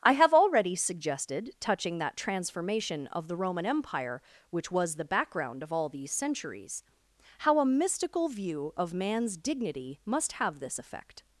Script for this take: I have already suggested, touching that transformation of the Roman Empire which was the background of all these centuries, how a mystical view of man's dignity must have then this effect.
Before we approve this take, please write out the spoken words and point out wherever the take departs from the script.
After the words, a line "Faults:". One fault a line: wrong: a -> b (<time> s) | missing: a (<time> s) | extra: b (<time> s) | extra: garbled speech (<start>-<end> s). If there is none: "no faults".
I have already suggested, touching that transformation of the Roman Empire which was the background of all these centuries, how a mystical view of man's dignity must have this effect.
Faults:
missing: then (10.6 s)